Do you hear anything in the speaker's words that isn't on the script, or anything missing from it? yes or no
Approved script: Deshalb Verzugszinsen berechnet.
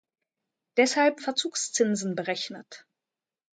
no